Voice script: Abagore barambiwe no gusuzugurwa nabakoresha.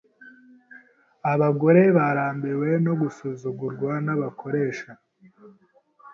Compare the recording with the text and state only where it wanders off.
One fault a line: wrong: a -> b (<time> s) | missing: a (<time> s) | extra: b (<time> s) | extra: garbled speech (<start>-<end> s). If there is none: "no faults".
no faults